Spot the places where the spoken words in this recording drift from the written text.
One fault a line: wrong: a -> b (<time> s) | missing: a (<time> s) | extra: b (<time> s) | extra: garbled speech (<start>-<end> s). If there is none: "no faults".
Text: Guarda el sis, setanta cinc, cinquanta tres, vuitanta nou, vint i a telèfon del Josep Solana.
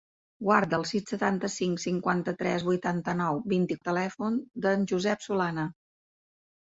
no faults